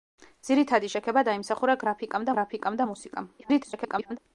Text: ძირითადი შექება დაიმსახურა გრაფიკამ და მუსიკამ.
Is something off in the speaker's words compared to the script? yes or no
yes